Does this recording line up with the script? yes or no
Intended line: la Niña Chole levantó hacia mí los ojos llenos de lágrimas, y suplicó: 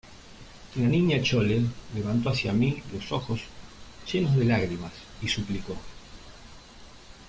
yes